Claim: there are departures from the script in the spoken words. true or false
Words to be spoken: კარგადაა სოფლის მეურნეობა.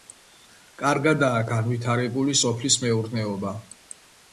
true